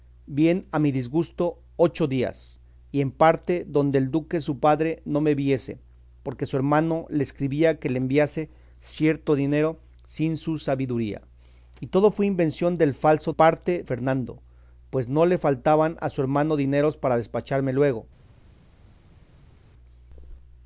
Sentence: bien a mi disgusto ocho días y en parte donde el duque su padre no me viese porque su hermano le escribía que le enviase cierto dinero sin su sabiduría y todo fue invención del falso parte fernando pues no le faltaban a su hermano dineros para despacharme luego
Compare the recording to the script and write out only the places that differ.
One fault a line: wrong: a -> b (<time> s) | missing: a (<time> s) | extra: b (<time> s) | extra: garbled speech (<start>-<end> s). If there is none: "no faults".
no faults